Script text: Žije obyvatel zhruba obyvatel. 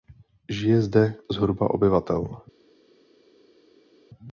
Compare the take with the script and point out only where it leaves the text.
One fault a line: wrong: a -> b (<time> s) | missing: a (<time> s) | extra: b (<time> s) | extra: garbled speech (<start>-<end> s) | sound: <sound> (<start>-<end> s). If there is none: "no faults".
wrong: obyvatel -> zde (0.8 s)